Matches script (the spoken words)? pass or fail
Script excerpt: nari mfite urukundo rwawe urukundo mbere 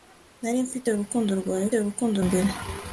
pass